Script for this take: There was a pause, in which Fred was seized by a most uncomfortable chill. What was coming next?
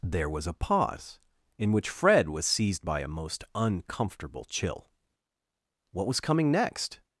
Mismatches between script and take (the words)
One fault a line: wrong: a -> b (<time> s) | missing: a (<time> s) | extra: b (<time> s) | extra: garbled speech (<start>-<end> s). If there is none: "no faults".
no faults